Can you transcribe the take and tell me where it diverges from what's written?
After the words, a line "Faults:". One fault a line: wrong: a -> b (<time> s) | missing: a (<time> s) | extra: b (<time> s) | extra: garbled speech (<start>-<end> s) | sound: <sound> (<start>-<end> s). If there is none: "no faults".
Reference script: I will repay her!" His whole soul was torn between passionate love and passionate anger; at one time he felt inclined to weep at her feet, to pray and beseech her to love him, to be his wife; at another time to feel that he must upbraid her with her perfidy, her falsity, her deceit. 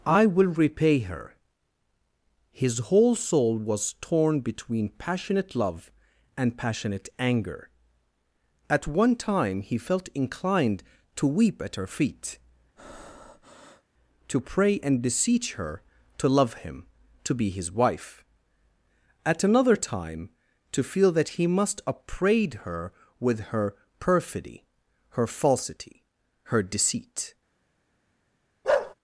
I will repay her!" His whole soul was torn between passionate love and passionate anger; at one time he felt inclined to weep at her feet, to pray and beseech her to love him, to be his wife; at another time to feel that he must upbraid her with her perfidy, her falsity, her deceit.
Faults:
sound: breath (12.8-13.8 s)
sound: bark (28.6-28.9 s)